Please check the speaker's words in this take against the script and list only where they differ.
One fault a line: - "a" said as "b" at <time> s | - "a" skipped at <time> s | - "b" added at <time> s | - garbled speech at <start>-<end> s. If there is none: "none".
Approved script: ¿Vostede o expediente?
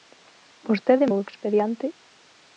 none